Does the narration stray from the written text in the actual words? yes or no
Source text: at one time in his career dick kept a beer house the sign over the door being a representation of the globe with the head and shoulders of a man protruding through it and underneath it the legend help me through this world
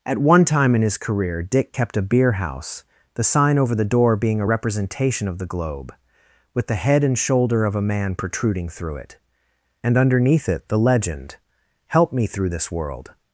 yes